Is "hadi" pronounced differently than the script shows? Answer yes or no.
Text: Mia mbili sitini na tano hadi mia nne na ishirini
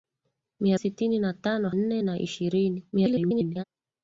yes